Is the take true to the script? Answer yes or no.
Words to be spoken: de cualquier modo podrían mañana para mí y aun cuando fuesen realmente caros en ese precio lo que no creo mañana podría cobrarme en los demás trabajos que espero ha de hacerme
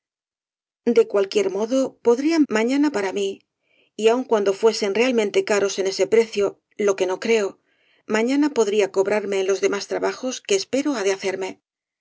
yes